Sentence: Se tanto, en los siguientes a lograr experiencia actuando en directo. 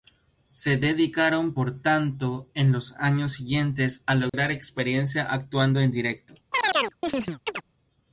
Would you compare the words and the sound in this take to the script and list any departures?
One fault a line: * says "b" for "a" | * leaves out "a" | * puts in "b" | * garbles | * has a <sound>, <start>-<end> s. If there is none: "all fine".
* puts in "dedicaron por"
* puts in "años"
* has a dropout, 4.3-4.3 s
* has a chirp, 6.5-7.6 s